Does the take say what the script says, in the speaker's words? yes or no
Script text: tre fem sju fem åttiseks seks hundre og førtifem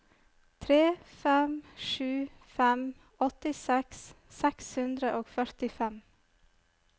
yes